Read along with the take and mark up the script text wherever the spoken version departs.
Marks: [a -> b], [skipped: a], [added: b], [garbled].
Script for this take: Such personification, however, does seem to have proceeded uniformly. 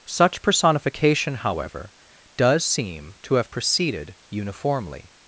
Such personification, however, does seem to have proceeded uniformly.